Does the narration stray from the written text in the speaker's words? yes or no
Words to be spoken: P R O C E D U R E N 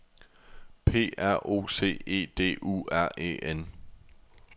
no